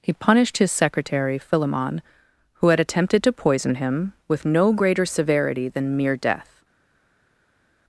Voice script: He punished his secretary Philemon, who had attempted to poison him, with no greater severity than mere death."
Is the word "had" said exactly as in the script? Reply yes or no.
yes